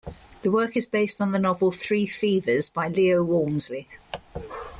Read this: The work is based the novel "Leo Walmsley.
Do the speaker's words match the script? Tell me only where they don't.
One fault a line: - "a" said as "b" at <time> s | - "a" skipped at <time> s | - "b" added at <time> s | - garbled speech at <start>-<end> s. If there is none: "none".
- "on" added at 1.2 s
- "Three Fevers by" added at 1.7 s